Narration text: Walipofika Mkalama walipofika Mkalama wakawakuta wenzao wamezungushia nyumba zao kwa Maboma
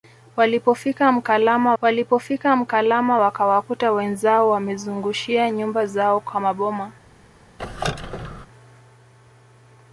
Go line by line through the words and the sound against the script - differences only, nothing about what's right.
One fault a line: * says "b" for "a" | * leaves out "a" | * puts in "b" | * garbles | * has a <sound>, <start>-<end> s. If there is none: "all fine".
* has a squeak, 7.6-8.5 s